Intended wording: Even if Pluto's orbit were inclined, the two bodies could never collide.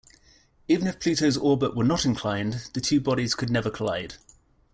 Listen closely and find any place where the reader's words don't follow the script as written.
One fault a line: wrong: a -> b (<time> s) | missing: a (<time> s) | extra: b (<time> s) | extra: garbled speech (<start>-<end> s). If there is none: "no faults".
extra: not (1.8 s)